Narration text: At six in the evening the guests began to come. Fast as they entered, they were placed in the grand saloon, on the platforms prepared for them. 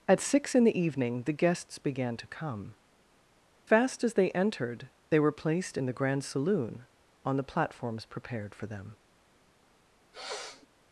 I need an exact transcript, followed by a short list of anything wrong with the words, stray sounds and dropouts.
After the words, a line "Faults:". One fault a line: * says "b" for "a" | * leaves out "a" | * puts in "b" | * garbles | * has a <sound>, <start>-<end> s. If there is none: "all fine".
At six in the evening the guests began to come. Fast as they entered, they were placed in the grand saloon, on the platforms prepared for them.
Faults:
* has a sniff, 10.1-10.7 s